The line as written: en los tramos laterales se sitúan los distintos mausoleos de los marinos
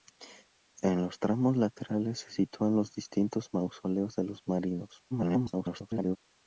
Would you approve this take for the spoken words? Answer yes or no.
no